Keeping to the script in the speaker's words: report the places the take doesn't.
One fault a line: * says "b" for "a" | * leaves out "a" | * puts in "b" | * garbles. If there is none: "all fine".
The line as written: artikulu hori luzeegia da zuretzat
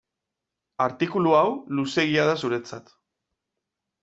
* says "hau" for "hori"